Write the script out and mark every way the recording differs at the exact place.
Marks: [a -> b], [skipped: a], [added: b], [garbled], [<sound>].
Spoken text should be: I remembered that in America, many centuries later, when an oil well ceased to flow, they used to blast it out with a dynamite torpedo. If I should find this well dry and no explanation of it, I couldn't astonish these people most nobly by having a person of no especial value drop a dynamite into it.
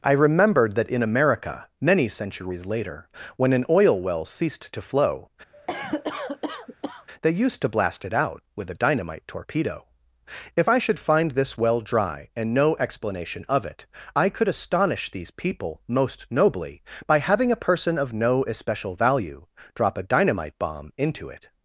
I remembered that in America, many centuries later, when an oil well ceased to flow, [cough] they used to blast it out with a dynamite torpedo. If I should find this well dry and no explanation of it, I [couldn't -> could] astonish these people most nobly by having a person of no especial value drop a dynamite [added: bomb] into it.